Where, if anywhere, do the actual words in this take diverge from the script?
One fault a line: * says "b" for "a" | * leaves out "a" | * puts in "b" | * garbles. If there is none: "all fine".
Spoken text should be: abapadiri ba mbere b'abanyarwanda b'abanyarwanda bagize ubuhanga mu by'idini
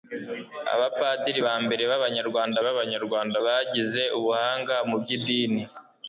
all fine